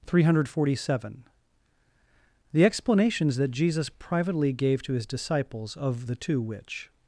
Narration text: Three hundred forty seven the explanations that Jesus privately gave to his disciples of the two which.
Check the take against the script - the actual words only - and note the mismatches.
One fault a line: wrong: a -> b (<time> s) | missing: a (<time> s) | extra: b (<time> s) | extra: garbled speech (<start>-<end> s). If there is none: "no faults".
no faults